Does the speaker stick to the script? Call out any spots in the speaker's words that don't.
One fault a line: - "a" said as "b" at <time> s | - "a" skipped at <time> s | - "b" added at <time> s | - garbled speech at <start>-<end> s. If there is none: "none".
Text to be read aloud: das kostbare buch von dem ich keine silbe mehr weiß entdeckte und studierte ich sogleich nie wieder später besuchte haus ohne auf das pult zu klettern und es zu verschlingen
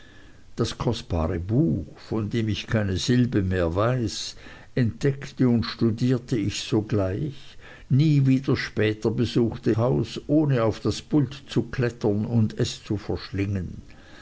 none